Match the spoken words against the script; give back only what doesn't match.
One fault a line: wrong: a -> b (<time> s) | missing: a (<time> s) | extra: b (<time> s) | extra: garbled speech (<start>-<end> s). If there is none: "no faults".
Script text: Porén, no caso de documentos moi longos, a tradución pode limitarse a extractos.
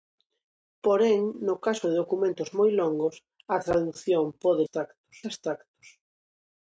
wrong: limitarse -> extractos (4.6 s)